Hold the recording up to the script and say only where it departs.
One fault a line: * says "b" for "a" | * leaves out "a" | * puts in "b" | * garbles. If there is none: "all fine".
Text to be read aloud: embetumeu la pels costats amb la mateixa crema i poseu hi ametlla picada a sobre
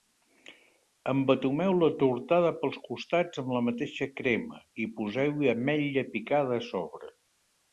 * puts in "tortada"